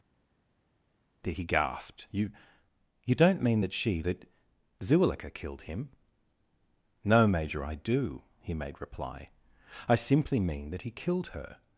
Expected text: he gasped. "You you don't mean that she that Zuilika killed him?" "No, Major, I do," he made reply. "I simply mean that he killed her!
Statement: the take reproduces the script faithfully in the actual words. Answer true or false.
true